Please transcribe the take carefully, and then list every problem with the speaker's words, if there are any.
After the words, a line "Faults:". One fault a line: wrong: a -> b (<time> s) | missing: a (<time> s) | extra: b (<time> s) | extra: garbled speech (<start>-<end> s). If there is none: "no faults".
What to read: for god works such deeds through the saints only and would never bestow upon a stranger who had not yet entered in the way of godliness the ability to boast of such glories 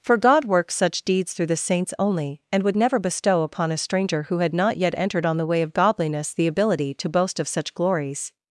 for god works such deeds through the saints only and would never bestow upon a stranger who had not yet entered on the way of godliness the ability to boast of such glories
Faults:
wrong: in -> on (5.3 s)